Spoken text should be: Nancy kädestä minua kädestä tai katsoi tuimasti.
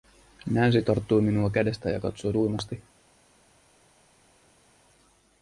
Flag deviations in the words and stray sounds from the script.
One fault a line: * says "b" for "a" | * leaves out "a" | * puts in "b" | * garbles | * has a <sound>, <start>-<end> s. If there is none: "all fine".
* says "tarttui" for "kädestä"
* says "ja" for "tai"